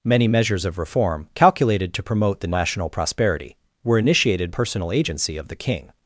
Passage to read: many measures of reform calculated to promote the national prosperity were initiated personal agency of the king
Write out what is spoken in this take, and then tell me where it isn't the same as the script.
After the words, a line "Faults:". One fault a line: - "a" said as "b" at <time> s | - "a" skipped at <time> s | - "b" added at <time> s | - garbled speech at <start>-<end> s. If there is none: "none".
many measures of reform calculated to promote the national prosperity were initiated personal agency of the king
Faults:
none